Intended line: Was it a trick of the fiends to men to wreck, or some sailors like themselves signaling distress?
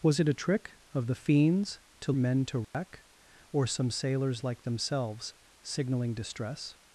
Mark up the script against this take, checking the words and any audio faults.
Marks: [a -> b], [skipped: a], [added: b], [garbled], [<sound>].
Was it a trick of the fiends to men to wreck, [dropout] or some sailors like themselves signaling distress?